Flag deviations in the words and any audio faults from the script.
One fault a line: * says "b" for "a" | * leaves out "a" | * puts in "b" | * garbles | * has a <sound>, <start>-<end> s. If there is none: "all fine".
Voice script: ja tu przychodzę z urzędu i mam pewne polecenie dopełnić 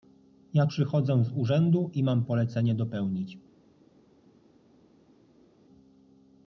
* leaves out "tu"
* leaves out "pewne"